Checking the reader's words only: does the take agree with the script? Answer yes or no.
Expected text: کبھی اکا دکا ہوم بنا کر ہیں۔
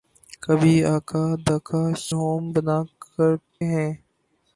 yes